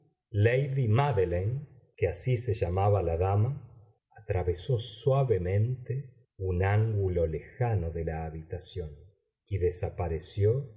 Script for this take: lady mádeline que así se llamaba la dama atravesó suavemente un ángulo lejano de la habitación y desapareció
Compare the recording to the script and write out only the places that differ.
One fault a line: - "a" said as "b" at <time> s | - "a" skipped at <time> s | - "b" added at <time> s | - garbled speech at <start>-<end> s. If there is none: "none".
none